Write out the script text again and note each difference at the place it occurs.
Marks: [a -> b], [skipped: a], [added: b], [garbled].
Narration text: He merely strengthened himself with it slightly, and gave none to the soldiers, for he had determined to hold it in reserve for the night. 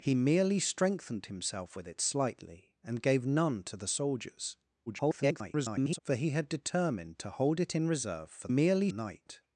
He merely strengthened himself with it slightly, and gave none to the soldiers, [garbled] for he had determined to hold it in reserve for [the -> merely] night.